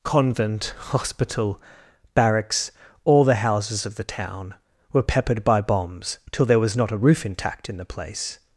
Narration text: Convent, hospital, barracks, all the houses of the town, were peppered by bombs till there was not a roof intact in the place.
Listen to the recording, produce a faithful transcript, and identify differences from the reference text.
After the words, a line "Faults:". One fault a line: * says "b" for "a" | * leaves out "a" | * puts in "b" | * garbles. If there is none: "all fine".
Convent, hospital, barracks, all the houses of the town, were peppered by bombs till there was not a roof intact in the place.
Faults:
all fine